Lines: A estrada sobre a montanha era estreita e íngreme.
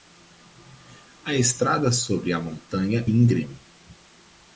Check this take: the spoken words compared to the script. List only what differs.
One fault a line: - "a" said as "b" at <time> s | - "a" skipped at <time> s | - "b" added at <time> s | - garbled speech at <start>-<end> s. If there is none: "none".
- "era estreita e" skipped at 3.0 s